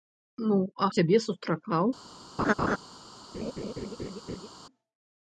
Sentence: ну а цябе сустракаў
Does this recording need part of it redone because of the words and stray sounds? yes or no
yes